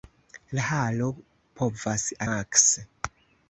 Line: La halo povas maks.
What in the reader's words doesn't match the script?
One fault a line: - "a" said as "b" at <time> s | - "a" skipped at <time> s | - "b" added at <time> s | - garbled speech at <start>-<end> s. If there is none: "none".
none